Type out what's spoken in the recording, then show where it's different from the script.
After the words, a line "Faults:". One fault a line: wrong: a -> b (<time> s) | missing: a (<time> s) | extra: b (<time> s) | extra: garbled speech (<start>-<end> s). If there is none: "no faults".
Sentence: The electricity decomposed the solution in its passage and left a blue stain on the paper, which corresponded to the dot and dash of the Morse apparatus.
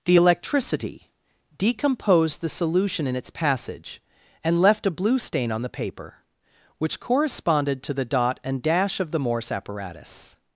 The electricity decomposed the solution in its passage and left a blue stain on the paper, which corresponded to the dot and dash of the Morse apparatus.
Faults:
no faults